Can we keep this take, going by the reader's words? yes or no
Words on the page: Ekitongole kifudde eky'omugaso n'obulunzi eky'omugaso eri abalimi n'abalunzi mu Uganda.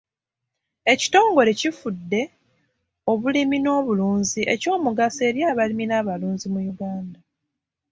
no